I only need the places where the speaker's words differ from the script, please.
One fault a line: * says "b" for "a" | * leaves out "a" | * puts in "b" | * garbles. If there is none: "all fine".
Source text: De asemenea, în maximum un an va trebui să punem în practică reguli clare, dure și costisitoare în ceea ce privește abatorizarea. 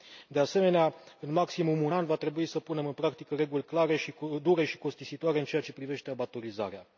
all fine